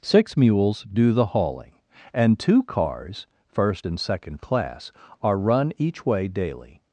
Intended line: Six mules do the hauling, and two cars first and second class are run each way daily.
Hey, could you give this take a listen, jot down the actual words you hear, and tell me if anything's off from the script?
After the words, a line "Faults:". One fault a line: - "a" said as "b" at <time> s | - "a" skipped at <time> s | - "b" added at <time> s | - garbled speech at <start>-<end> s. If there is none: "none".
Six mules do the hauling, and two cars first and second class are run each way daily.
Faults:
none